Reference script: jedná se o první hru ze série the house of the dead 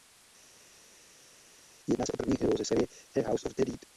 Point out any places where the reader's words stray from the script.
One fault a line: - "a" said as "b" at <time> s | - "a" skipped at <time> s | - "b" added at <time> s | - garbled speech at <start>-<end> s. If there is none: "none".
none